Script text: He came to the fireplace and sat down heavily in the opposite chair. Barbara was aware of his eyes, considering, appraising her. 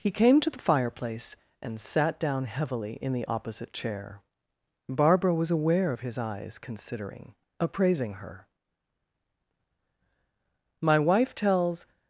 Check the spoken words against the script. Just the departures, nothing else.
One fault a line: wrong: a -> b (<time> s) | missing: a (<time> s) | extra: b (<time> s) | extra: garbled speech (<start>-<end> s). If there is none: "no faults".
extra: My wife tells (10.8 s)